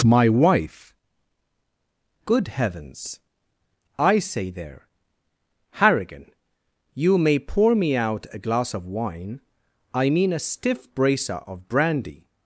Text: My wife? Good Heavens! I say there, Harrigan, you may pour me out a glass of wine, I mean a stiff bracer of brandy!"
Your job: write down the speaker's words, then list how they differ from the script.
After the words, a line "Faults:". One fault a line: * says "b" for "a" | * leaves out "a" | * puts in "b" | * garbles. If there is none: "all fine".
My wife? Good Heavens! I say there, Harrigan, you may pour me out a glass of wine, I mean a stiff bracer of brandy!"
Faults:
all fine